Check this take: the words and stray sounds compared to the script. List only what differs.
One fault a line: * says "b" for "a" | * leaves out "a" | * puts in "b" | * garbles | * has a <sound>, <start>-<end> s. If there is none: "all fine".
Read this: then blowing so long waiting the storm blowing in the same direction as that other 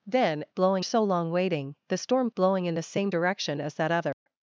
* has a dropout, 4.1-4.3 s